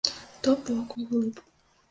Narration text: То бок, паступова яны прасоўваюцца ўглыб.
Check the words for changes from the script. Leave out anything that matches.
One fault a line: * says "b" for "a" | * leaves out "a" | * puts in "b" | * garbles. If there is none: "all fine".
* leaves out "паступова яны прасоўваюцца"